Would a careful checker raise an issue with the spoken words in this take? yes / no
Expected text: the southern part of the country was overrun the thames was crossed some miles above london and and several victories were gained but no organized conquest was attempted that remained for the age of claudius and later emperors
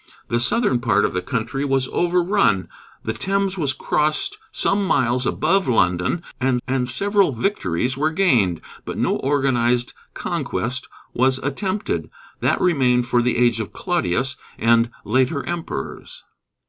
no